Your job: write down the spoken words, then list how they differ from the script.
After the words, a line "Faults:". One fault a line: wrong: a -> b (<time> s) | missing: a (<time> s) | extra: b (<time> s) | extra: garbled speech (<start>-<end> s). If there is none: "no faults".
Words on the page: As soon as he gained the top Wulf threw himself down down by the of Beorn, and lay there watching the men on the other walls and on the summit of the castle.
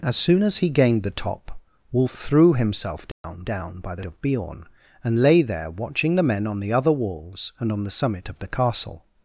As soon as he gained the top Wulf threw himself down down by the of Beorn, and lay there watching the men on the other walls and on the summit of the castle.
Faults:
no faults